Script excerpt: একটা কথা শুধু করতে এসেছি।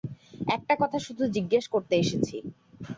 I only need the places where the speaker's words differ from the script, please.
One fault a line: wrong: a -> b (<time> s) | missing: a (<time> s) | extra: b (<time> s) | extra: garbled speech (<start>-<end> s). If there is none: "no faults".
extra: জিজ্ঞেস (1.4 s)